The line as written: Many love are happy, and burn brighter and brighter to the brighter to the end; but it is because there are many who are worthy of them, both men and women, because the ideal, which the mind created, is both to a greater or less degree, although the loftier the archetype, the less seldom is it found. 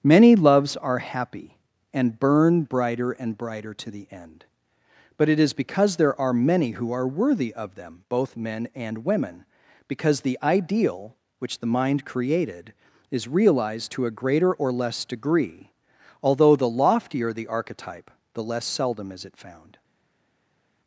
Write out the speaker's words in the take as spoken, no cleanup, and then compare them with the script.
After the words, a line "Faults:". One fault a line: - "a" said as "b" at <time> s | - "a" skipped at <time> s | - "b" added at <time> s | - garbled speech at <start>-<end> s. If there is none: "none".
Many loves are happy, and burn brighter and brighter to the end; but it is because there are many who are worthy of them, both men and women, because the ideal, which the mind created, is realized to a greater or less degree, although the loftier the archetype, the less seldom is it found.
Faults:
- "love" said as "loves" at 0.3 s
- "brighter to the" skipped at 4.1 s
- "both" said as "realized" at 13.3 s